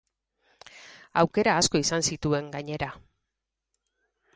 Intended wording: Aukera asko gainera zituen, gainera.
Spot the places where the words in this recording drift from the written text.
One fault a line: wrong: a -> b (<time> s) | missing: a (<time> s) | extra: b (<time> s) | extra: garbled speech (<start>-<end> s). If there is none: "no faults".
wrong: gainera -> izan (1.8 s)